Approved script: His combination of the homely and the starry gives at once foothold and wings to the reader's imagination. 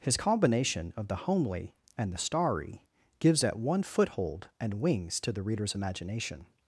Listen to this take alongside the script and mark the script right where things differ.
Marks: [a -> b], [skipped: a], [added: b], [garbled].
His combination of the homely and the starry gives at [once -> one] foothold and wings to the reader's imagination.